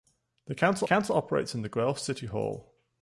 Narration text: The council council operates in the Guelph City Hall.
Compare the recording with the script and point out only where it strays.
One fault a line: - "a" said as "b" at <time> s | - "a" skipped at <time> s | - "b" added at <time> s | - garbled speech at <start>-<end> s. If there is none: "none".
none